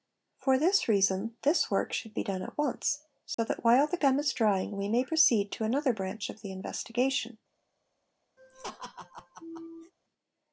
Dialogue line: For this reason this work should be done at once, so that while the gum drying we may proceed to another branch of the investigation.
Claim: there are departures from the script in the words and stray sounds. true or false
true